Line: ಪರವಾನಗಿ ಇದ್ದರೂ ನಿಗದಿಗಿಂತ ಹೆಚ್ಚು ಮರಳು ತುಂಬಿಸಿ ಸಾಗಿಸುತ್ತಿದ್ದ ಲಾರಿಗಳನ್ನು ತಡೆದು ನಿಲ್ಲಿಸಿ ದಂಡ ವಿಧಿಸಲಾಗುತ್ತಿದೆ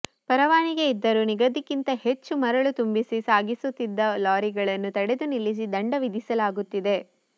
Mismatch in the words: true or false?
false